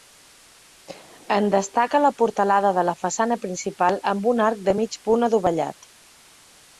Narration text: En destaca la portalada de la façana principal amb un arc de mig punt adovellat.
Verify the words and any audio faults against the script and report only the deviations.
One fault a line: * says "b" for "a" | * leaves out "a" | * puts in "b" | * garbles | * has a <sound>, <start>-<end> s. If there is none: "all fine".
all fine